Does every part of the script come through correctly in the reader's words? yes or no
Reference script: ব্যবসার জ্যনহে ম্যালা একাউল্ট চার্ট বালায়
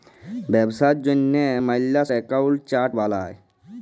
yes